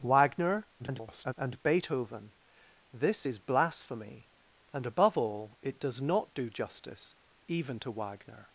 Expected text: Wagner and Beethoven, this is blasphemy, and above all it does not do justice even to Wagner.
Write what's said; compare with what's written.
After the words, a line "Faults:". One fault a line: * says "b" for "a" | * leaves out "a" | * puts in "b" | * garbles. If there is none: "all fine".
Wagner [garbled] and Beethoven, this is blasphemy, and above all it does not do justice even to Wagner.
Faults:
* garbles